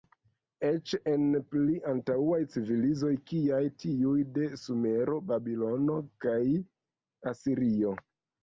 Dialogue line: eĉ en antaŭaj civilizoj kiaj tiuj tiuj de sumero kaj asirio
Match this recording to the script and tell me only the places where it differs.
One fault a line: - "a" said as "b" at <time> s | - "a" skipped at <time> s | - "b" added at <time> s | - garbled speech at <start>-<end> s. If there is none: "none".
- "pli" added at 1.6 s
- "tiuj" skipped at 4.2 s
- "babilono" added at 5.3 s